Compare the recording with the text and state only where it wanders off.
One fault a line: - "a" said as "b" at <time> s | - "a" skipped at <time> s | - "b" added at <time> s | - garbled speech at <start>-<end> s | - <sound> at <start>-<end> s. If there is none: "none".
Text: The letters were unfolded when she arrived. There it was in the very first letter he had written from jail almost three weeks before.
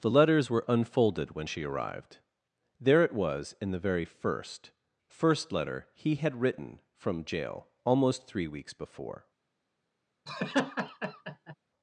- "first" added at 5.1 s
- laugh at 10.3-11.5 s